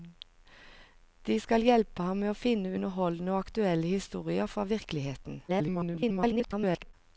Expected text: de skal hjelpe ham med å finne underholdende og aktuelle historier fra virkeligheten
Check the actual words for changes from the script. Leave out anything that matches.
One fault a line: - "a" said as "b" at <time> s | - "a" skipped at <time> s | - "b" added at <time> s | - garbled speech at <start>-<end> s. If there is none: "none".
- garbled speech at 5.5-6.9 s